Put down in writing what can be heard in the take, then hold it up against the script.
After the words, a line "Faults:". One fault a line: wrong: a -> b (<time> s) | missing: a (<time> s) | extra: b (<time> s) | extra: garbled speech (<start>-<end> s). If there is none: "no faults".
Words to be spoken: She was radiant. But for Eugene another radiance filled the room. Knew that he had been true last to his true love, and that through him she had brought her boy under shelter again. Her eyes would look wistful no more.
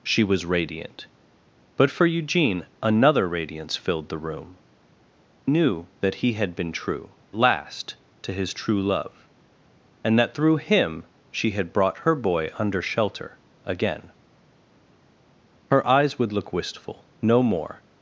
She was radiant. But for Eugene another radiance filled the room. Knew that he had been true last to his true love, and that through him she had brought her boy under shelter again. Her eyes would look wistful no more.
Faults:
no faults